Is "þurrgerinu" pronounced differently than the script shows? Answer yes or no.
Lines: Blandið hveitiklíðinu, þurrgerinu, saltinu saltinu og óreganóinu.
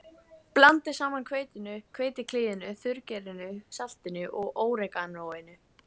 no